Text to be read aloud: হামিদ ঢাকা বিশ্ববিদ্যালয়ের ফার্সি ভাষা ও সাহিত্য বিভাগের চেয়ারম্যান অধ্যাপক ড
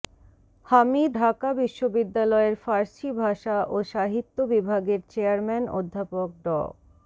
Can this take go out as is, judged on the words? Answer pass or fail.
pass